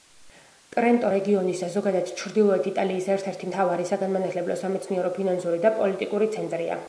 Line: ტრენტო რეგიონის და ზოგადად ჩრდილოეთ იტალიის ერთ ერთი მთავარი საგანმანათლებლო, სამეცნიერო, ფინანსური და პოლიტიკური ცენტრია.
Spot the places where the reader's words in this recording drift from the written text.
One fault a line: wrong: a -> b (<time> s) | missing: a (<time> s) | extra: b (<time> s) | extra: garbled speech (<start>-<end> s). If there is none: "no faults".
no faults